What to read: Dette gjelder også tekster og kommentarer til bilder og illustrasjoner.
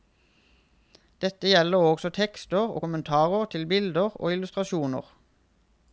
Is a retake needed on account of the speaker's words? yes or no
no